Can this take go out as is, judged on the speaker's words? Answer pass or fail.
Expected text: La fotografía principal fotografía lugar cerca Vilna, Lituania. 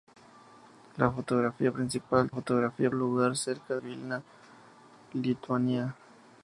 pass